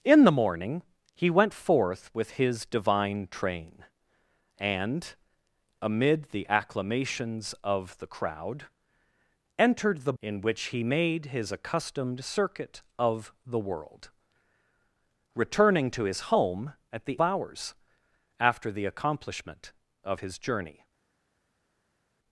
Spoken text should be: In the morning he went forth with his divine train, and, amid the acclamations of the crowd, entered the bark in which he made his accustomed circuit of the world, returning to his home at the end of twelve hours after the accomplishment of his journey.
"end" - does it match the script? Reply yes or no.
no